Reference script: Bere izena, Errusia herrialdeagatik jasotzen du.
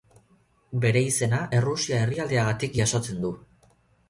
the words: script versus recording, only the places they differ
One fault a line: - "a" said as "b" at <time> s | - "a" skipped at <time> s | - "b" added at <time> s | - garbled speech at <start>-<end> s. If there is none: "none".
none